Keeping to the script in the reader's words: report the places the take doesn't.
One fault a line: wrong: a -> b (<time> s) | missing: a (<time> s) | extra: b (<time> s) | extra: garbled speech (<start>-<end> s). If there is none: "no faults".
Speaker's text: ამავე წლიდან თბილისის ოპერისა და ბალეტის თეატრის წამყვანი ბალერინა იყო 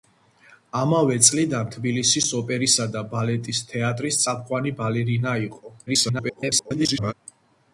extra: garbled speech (5.9-7.1 s)